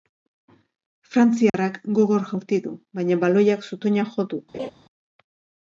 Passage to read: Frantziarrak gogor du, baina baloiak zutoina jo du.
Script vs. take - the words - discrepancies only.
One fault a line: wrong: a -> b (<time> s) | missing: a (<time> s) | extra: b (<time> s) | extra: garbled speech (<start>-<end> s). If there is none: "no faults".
extra: jaurti (2.3 s)